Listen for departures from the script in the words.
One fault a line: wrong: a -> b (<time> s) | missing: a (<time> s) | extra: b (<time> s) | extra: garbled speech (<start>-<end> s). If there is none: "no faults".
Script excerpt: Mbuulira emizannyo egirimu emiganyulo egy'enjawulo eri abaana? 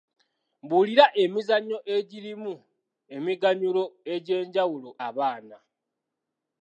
missing: eri (4.9 s)